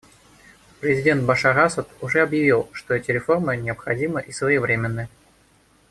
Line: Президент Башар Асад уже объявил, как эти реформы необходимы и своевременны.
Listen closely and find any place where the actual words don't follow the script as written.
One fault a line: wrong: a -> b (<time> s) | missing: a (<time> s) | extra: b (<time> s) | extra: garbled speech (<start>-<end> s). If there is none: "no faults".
wrong: как -> что (2.7 s)